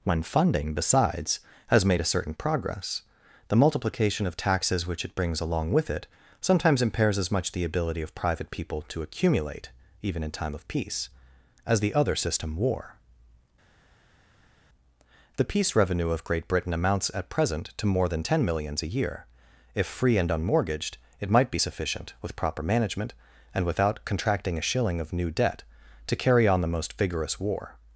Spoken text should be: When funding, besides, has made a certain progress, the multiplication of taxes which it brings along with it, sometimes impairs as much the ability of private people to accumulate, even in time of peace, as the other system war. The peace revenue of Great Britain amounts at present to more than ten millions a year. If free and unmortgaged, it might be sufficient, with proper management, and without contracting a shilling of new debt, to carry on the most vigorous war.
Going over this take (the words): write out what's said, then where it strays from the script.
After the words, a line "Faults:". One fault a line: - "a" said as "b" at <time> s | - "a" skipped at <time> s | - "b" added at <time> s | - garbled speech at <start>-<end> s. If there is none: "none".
When funding, besides, has made a certain progress, the multiplication of taxes which it brings along with it, sometimes impairs as much the ability of private people to accumulate, even in time of peace, as the other system war. The peace revenue of Great Britain amounts at present to more than ten millions a year. If free and unmortgaged, it might be sufficient, with proper management, and without contracting a shilling of new debt, to carry on the most vigorous war.
Faults:
none